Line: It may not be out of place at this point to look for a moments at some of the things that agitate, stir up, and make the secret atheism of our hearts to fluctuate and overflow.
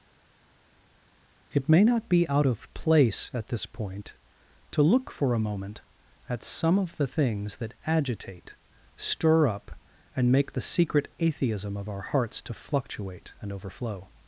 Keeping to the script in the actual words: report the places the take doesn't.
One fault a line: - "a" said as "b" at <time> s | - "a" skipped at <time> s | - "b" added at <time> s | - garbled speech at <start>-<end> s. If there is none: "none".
- "moments" said as "moment" at 5.4 s